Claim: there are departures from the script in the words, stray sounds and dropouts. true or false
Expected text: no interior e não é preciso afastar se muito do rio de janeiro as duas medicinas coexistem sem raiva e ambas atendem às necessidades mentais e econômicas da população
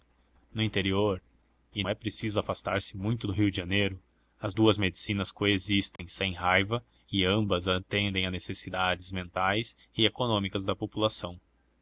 true